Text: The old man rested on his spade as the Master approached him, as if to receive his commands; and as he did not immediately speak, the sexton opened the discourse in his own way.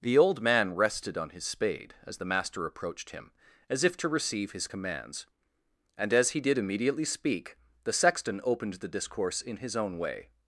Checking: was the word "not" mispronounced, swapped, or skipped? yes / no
yes